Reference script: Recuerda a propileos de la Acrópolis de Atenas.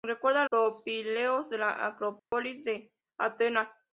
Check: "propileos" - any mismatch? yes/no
no